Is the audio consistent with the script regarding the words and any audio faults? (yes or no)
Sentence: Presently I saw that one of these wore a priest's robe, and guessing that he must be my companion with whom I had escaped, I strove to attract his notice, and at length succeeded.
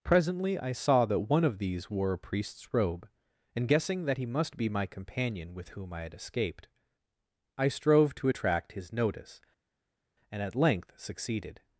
yes